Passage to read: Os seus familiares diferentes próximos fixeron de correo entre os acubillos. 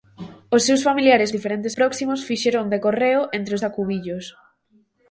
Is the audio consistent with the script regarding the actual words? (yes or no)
yes